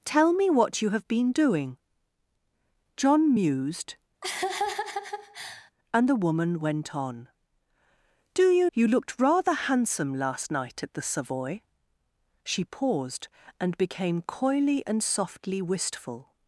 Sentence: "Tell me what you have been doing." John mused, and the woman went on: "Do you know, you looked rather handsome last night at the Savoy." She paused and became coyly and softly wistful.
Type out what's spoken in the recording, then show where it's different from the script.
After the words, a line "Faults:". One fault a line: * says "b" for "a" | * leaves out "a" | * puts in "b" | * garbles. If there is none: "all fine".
"Tell me what you have been doing." John mused, and the woman went on: "Do you you looked rather handsome last night at the Savoy." She paused and became coyly and softly wistful.
Faults:
* leaves out "know"